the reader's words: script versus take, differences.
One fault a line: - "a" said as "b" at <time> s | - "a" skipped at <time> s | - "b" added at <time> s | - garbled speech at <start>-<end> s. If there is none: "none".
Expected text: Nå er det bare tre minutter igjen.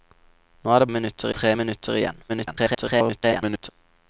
- "bare" said as "minutter" at 0.9 s
- garbled speech at 2.3-3.7 s